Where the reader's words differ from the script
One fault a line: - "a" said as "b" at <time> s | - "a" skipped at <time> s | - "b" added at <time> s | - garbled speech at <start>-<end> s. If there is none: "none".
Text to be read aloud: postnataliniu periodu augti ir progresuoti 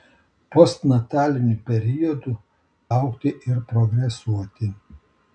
none